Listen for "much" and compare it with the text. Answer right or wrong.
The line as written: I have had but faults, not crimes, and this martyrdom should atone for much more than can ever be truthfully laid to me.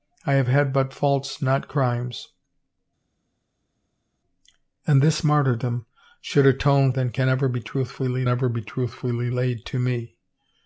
wrong